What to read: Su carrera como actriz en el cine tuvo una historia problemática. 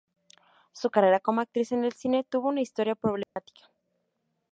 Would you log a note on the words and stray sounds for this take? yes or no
yes